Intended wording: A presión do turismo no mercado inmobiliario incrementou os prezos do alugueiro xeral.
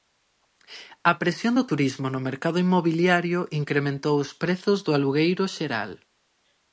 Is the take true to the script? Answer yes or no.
yes